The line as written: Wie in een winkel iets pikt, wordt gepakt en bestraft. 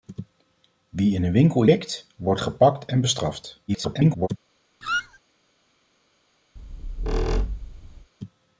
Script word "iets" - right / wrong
wrong